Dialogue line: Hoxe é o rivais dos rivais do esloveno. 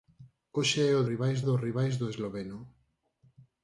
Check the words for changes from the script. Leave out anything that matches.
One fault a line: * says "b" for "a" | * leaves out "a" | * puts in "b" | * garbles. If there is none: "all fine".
all fine